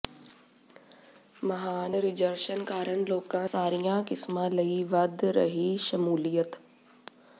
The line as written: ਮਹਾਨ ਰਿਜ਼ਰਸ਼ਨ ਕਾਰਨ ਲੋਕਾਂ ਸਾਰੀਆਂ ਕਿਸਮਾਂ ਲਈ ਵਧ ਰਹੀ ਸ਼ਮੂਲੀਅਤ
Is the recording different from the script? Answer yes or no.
no